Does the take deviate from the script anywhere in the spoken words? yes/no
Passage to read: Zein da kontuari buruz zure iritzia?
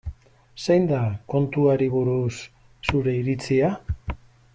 no